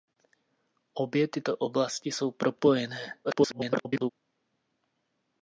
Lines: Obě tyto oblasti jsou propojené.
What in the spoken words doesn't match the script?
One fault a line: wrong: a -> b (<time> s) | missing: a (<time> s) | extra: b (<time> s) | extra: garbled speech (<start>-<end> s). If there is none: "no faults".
extra: garbled speech (3.2-4.1 s)